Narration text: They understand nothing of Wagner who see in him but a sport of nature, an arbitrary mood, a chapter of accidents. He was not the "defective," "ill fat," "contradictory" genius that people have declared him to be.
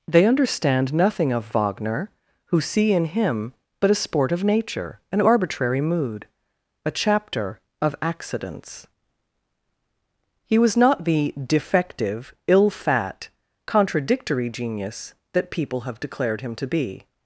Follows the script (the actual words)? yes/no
yes